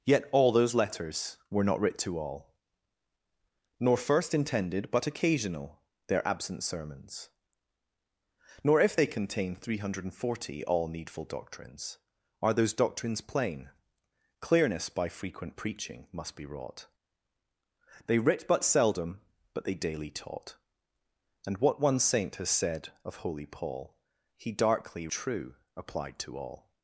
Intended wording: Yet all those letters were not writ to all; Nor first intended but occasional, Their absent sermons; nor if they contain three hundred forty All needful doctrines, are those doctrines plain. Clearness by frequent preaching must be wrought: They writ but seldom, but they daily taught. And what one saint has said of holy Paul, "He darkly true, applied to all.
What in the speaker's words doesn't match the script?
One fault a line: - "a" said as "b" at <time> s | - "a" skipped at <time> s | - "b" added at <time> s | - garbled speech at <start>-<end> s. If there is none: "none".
none